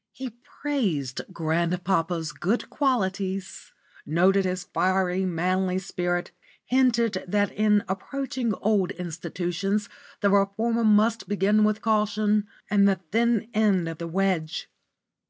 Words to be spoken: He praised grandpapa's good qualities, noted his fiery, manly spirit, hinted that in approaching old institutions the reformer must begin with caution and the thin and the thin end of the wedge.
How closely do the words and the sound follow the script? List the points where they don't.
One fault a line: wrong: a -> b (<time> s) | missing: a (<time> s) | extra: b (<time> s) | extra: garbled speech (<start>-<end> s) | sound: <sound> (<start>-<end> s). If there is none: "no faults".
missing: and the thin (13.5 s)